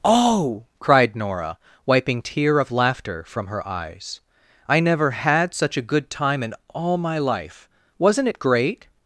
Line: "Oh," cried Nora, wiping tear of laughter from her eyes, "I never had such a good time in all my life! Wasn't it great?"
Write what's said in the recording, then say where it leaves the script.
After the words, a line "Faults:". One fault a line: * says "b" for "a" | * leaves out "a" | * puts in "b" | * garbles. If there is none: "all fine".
"Oh," cried Nora, wiping tear of laughter from her eyes, "I never had such a good time in all my life! Wasn't it great?"
Faults:
all fine